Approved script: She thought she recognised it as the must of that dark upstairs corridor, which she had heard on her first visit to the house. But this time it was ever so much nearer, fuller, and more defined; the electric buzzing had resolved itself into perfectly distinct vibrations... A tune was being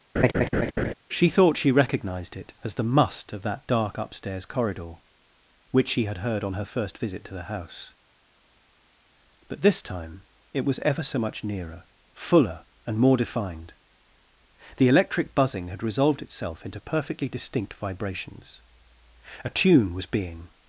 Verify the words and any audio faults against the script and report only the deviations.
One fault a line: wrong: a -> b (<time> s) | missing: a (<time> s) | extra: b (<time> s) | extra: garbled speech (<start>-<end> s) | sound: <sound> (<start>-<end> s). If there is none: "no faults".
sound: laugh (0.1-0.9 s)